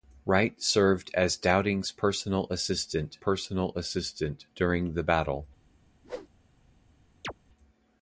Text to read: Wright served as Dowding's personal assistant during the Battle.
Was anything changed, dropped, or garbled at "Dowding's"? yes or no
no